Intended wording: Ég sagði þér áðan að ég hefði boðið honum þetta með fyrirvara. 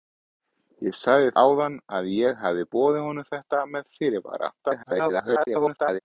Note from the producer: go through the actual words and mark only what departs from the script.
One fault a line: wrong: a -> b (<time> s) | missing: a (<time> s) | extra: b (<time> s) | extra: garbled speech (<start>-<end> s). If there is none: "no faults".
missing: þér (1.3 s)
extra: garbled speech (4.6-6.0 s)